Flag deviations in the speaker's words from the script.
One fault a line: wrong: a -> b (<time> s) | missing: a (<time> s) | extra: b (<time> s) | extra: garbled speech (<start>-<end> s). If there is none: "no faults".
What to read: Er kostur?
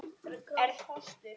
no faults